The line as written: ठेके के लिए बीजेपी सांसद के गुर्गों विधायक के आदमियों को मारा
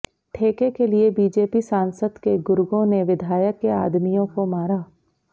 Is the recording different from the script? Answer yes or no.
yes